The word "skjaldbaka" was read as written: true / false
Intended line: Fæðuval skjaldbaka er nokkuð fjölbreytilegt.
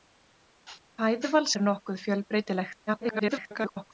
false